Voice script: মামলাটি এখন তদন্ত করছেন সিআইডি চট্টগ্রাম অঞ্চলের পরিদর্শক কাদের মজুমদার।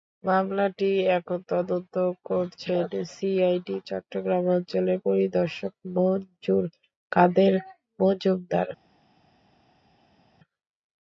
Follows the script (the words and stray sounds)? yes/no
no